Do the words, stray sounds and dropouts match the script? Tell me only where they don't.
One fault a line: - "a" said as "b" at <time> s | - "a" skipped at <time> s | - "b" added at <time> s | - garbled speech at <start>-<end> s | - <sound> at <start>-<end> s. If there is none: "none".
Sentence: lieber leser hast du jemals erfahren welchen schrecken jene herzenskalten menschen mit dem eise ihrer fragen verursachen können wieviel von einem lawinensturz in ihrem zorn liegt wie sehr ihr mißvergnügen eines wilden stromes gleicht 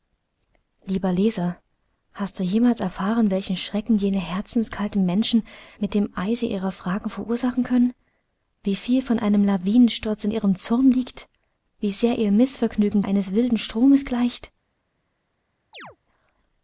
- chirp at 15.7-16.0 s